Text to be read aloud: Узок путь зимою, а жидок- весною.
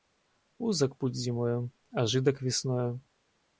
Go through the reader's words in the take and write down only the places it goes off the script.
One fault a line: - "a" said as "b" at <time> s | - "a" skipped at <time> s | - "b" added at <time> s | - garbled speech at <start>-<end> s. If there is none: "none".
none